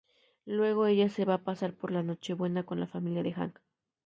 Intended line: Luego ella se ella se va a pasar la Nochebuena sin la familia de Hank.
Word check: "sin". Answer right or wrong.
wrong